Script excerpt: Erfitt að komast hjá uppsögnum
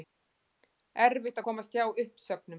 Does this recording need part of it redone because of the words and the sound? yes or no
no